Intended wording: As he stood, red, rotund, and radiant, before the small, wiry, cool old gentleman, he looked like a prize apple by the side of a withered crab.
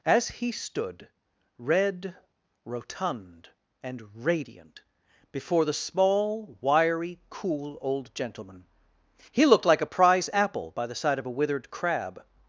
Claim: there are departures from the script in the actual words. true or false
false